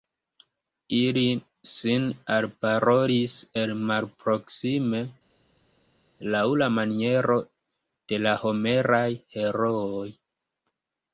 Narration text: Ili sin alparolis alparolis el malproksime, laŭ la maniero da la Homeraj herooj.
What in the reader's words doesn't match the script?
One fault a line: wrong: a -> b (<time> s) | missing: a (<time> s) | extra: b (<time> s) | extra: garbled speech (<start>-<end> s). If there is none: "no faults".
missing: alparolis (3.4 s)
wrong: da -> de (8.1 s)